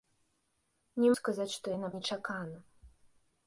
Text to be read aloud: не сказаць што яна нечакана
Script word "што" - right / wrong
right